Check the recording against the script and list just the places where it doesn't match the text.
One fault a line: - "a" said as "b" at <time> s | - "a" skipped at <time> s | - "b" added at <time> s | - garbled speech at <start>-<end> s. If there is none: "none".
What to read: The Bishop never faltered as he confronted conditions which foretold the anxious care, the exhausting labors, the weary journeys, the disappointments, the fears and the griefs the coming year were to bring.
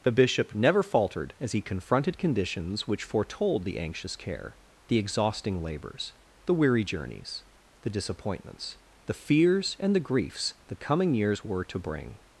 - "year" said as "years" at 11.1 s